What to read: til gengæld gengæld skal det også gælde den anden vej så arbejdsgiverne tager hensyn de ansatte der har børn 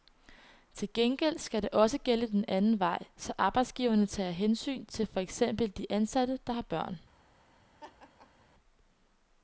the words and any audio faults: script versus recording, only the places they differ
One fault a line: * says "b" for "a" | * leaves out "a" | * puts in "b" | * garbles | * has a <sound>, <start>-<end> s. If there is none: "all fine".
* leaves out "gengæld"
* puts in "til for eksempel"
* has a laugh, 7.8-8.5 s